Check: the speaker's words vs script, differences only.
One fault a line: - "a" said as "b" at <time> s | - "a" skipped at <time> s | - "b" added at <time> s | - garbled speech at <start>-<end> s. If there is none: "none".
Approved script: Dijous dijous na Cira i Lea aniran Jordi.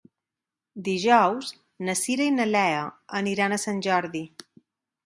- "dijous" skipped at 1.5 s
- "na" added at 2.4 s
- "a Sant" added at 3.5 s